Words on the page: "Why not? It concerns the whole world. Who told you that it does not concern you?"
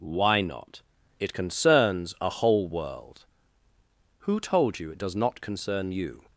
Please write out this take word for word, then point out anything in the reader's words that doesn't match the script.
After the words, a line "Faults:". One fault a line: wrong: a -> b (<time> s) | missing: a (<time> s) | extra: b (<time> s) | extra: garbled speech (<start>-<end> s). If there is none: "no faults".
"Why not? It concerns a whole world. Who told you it does not concern you?"
Faults:
wrong: the -> a (2.2 s)
missing: that (4.9 s)